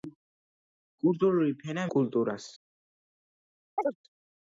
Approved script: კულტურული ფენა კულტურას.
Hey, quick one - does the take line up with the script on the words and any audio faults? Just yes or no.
no